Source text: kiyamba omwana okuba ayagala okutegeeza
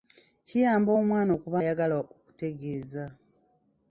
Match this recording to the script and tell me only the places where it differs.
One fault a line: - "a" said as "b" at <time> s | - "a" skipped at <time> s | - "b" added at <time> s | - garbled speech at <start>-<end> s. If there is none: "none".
none